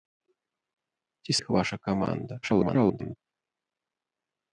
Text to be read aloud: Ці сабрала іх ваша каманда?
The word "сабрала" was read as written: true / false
false